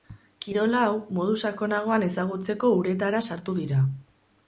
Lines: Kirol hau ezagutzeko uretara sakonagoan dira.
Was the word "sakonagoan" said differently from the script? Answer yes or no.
yes